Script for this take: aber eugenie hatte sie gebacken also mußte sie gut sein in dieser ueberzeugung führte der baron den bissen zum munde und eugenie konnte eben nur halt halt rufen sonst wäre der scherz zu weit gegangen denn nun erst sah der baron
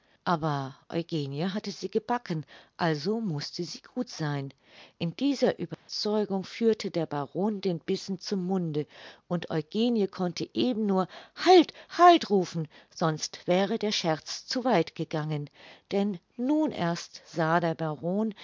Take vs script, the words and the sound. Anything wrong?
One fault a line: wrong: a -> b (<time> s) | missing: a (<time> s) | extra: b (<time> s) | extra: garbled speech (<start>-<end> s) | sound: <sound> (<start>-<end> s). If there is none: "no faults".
sound: dropout (5.7-5.9 s)